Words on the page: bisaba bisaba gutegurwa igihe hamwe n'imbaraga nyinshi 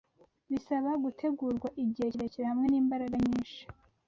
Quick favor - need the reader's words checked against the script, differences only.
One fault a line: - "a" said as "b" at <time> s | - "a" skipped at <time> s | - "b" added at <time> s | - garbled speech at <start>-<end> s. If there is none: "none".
- "bisaba" skipped at 0.9 s
- "kirekire" added at 2.1 s